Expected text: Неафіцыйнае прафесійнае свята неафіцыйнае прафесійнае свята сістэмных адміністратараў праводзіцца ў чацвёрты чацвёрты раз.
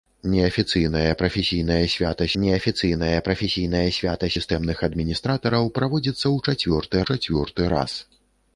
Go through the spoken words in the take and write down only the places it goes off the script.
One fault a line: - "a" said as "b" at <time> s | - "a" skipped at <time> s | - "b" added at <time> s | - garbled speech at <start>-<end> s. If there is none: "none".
none